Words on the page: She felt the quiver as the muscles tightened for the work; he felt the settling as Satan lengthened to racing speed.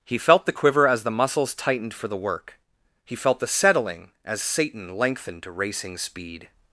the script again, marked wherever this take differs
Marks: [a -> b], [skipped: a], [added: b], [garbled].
[She -> He] felt the quiver as the muscles tightened for the work; he felt the settling as Satan lengthened to racing speed.